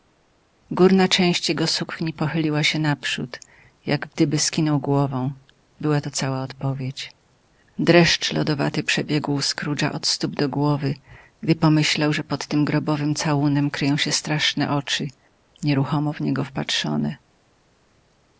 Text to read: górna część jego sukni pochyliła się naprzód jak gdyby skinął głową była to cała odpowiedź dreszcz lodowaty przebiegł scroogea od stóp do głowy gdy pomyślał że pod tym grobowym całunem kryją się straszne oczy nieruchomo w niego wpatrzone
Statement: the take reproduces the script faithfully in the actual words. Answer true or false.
true